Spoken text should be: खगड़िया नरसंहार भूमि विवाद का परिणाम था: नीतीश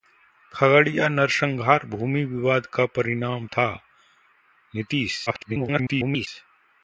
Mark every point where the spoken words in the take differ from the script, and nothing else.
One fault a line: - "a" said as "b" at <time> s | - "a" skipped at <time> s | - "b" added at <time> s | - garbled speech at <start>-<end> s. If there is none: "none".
- garbled speech at 5.3-6.3 s